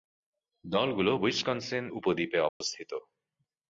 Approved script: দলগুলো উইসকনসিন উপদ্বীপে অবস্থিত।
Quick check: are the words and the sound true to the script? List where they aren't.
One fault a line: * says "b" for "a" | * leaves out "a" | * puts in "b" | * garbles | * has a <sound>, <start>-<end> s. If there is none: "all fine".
* has a dropout, 2.5-2.6 s